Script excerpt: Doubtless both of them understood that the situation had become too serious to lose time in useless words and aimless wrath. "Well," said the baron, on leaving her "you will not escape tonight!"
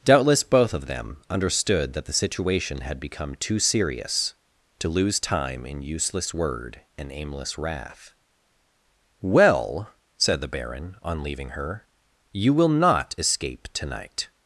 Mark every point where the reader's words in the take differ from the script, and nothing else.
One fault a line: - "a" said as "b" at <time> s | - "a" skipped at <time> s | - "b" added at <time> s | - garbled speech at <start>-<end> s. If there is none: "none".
- "words" said as "word" at 6.3 s